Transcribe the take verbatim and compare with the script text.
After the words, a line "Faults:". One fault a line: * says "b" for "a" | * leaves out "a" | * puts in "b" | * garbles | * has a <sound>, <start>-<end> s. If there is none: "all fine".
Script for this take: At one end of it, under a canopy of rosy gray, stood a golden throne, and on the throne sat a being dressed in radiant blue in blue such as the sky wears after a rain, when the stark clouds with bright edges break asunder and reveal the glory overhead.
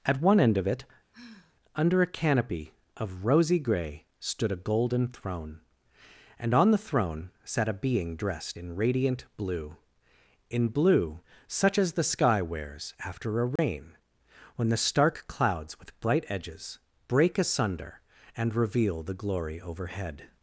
At one end of it, under a canopy of rosy gray, stood a golden throne, and on the throne sat a being dressed in radiant blue in blue such as the sky wears after a rain, when the stark clouds with bright edges break asunder and reveal the glory overhead.
Faults:
* has a sigh, 1.1-1.6 s
* has a dropout, 13.6-13.6 s